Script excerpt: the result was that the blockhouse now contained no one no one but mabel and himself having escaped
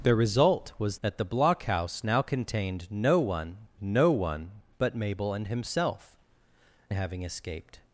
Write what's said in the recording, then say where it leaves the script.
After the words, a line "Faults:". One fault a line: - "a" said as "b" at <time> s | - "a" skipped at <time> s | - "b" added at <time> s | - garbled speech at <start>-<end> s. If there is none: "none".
the result was that the blockhouse now contained no one no one but mabel and himself having escaped
Faults:
none